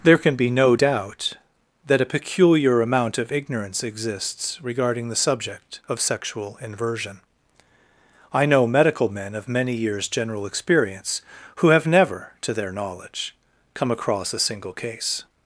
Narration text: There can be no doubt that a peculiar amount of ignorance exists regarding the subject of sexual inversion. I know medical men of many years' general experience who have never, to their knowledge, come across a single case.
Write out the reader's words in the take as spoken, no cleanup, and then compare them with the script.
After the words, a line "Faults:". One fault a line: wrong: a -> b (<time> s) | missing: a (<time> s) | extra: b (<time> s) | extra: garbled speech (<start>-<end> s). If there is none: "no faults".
There can be no doubt that a peculiar amount of ignorance exists regarding the subject of sexual inversion. I know medical men of many years' general experience who have never, to their knowledge, come across a single case.
Faults:
no faults